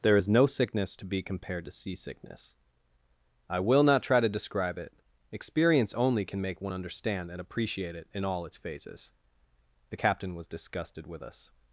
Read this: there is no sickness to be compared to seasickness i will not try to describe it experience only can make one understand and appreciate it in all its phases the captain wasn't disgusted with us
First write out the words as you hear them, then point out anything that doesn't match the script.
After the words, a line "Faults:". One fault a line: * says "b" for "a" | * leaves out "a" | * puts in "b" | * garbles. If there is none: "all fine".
there is no sickness to be compared to seasickness i will not try to describe it experience only can make one understand and appreciate it in all its phases the captain was disgusted with us
Faults:
* says "was" for "wasn't"